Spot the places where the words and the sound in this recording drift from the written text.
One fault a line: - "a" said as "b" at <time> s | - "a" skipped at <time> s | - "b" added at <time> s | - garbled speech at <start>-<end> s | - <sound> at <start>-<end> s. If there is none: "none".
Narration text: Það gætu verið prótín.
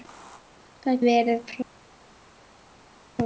- "gætu" skipped at 1.0 s